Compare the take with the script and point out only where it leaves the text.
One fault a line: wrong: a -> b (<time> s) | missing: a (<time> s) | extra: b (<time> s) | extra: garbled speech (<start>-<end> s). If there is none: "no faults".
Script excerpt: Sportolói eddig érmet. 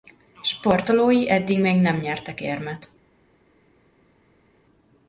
extra: még nem nyertek (1.6 s)